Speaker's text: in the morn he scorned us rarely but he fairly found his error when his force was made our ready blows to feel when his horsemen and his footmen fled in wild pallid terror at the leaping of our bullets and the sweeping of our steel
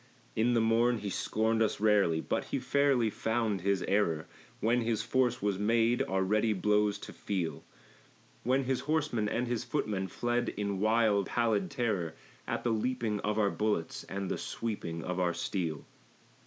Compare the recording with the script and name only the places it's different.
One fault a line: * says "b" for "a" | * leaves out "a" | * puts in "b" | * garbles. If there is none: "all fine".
all fine